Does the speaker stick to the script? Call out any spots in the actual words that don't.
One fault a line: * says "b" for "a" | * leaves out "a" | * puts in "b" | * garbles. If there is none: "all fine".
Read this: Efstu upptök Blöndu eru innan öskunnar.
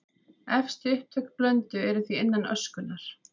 * puts in "því"